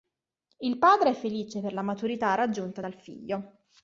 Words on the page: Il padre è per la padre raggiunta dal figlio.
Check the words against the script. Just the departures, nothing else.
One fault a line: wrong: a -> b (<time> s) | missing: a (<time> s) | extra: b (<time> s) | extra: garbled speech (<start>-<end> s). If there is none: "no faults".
extra: felice (1.1 s)
wrong: padre -> maturità (1.8 s)